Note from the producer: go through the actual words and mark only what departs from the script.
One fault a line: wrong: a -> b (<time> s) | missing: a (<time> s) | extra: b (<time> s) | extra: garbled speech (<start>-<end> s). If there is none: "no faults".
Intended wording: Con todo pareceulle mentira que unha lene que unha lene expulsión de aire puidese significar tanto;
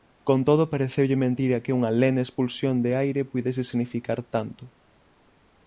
missing: que unha lene (2.2 s)